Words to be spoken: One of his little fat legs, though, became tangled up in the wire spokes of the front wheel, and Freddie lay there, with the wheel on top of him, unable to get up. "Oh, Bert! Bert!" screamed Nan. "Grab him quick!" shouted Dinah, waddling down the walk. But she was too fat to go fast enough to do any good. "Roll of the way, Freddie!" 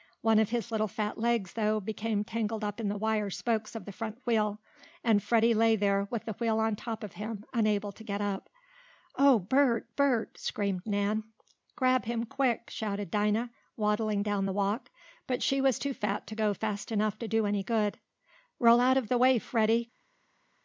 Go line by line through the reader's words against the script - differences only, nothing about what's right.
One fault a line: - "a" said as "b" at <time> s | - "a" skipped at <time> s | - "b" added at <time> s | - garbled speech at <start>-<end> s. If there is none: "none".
- "out" added at 18.8 s